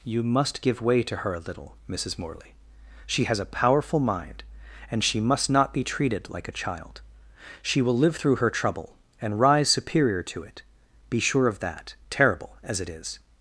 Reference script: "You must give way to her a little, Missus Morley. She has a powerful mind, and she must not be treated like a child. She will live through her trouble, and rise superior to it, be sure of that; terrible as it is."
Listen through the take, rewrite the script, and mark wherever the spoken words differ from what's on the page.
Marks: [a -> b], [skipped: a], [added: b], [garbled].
"You must give way to her a little, Missus Morley. She has a powerful mind, and she must not be treated like a child. She will live through her trouble, and rise superior to it, be sure of that; terrible as it is."